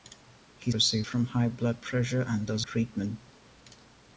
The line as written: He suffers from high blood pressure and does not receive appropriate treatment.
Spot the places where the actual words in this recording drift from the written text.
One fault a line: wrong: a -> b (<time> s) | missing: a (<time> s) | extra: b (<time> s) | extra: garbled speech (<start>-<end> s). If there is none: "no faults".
wrong: suffers -> receive (0.7 s)
missing: not receive appropriate (2.6 s)